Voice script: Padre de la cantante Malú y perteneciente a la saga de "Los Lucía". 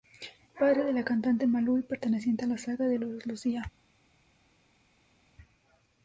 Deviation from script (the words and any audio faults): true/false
false